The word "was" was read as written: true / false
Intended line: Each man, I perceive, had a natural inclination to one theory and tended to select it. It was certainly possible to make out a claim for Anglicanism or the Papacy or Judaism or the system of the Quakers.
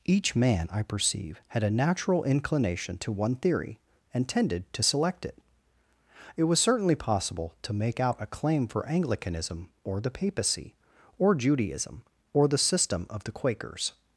true